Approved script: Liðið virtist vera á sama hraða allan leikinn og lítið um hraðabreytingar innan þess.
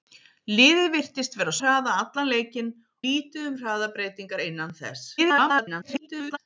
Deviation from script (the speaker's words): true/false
true